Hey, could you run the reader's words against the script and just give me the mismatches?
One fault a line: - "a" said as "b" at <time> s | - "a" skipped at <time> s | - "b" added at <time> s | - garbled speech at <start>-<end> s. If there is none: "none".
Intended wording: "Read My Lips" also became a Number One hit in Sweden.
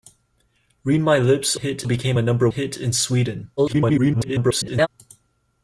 - "also" said as "hit" at 1.5 s
- "One" skipped at 2.5 s
- garbled speech at 3.6-4.9 s